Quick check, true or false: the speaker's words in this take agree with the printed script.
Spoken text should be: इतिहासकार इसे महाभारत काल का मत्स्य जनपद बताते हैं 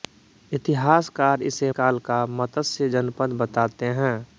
false